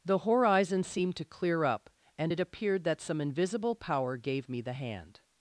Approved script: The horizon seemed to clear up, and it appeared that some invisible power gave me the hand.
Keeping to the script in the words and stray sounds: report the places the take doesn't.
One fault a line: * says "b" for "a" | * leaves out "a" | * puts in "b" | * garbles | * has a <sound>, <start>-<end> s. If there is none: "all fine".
all fine